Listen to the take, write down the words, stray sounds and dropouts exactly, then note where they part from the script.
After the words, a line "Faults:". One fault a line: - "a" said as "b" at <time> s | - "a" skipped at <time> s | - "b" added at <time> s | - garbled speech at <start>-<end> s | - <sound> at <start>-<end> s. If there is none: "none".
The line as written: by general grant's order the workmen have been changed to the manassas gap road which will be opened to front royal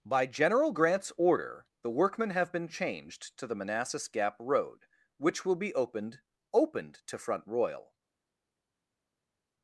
by general grant's order the workmen have been changed to the manassas gap road which will be opened opened to front royal
Faults:
- "opened" added at 6.5 s